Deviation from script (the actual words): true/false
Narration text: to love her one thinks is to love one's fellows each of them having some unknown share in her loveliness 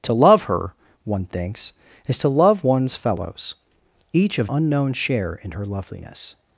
true